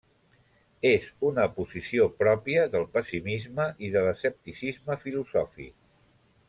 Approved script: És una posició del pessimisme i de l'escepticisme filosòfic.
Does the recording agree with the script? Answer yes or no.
no